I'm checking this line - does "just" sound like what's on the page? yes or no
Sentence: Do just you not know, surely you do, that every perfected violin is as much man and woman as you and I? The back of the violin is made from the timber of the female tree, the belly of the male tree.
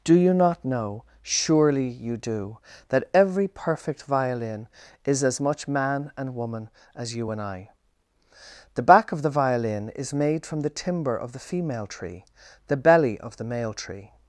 no